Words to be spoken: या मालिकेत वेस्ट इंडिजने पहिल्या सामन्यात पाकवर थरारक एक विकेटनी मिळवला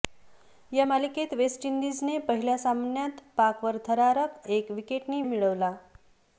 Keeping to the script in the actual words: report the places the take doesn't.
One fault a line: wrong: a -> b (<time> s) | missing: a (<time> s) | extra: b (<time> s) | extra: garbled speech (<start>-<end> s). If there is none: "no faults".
no faults